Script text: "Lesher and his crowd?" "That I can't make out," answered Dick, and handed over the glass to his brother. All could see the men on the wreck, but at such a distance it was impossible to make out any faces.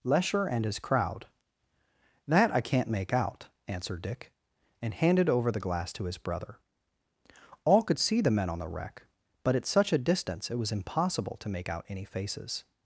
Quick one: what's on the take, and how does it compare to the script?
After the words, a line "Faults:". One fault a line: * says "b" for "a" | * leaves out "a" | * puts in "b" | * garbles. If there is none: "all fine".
"Lesher and his crowd?" "That I can't make out," answered Dick, and handed over the glass to his brother. All could see the men on the wreck, but at such a distance it was impossible to make out any faces.
Faults:
all fine